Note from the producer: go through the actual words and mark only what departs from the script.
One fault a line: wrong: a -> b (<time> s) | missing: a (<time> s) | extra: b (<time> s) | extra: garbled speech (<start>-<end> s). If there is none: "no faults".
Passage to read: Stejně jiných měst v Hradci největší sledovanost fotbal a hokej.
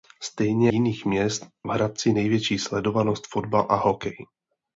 no faults